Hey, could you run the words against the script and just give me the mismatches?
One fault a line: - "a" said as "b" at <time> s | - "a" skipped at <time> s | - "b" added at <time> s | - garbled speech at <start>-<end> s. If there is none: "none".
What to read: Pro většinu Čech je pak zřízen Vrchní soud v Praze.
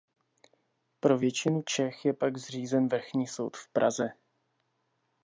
none